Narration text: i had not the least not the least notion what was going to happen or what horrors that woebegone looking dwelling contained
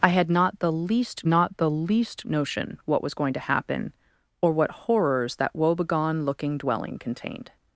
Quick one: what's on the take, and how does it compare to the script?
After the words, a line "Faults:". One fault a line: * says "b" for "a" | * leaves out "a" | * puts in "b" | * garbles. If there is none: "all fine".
i had not the least not the least notion what was going to happen or what horrors that woebegone looking dwelling contained
Faults:
all fine